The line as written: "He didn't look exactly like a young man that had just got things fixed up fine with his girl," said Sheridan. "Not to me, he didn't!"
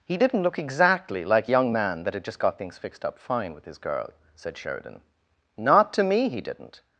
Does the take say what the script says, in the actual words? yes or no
no